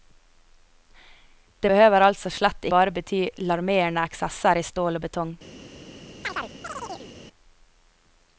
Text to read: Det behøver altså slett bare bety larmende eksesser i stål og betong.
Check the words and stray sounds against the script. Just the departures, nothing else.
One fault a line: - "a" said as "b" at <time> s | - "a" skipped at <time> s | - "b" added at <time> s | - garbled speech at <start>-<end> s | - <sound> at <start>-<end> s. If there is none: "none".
- chirp at 6.2-7.1 s